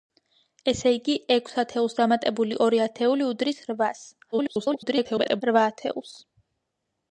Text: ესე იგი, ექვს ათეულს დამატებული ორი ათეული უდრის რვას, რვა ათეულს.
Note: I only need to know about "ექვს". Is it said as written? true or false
true